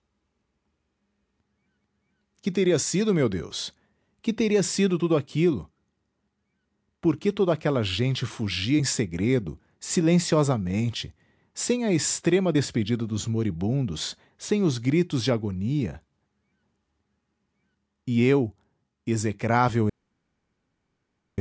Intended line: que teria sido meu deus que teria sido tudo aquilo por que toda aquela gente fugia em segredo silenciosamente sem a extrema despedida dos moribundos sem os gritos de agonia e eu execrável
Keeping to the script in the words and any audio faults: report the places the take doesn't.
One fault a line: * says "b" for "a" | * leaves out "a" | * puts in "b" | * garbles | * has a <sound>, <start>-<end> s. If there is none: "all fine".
all fine